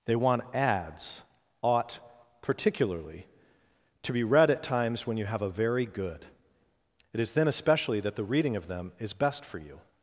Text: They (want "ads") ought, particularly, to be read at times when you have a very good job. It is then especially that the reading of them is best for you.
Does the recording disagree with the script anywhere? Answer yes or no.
yes